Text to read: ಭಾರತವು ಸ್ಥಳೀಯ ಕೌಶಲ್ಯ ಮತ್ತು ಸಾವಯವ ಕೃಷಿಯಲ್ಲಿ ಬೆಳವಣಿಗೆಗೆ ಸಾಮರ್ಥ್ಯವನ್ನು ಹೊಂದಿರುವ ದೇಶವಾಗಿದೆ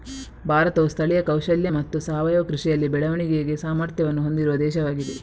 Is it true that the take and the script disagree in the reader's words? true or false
false